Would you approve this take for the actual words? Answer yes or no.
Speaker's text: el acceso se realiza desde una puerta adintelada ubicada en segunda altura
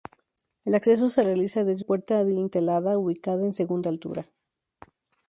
no